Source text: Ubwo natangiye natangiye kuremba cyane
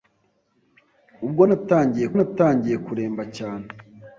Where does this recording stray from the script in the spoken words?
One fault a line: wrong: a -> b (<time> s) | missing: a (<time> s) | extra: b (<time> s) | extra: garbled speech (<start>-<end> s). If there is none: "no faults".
no faults